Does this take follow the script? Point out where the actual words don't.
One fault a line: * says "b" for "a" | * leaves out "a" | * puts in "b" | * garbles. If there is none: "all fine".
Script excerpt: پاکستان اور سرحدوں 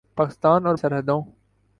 all fine